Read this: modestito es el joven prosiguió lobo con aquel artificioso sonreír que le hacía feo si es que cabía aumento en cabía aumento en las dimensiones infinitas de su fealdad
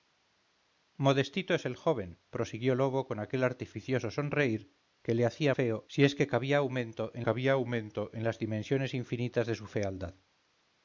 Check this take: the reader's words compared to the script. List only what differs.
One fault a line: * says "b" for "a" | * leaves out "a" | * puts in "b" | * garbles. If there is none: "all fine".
all fine